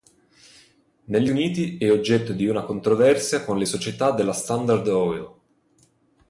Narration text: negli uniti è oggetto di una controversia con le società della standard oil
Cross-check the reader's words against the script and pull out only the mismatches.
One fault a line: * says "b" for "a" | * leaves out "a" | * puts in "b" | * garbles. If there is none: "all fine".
all fine